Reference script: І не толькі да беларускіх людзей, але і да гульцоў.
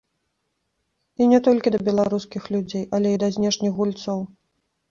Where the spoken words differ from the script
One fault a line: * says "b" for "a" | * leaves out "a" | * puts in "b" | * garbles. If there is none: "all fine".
* puts in "знешніх"